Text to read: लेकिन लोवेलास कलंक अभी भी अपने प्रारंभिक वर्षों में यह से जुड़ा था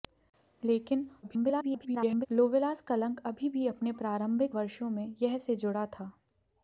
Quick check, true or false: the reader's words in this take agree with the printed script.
false